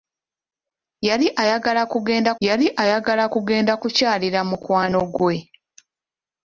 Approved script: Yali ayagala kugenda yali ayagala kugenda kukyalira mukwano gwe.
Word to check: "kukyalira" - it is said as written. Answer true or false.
true